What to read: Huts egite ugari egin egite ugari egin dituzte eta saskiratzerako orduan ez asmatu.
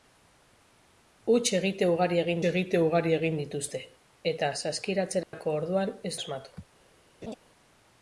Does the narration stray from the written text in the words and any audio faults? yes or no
yes